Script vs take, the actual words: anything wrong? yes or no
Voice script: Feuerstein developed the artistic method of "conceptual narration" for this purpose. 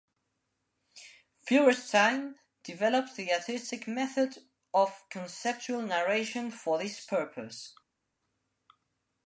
no